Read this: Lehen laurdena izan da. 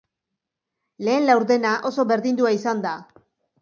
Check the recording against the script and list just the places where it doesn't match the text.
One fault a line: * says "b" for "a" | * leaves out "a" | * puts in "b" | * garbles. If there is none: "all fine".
* puts in "oso berdindua"